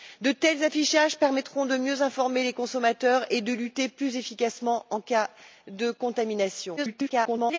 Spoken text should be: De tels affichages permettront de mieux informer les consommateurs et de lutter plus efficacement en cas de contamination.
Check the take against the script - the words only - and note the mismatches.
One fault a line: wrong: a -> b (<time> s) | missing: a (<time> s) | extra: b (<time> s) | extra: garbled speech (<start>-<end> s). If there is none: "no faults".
extra: garbled speech (6.8-7.6 s)